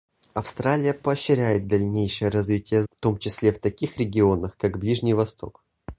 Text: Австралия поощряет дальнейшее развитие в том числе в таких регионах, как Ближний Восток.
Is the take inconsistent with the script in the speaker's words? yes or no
no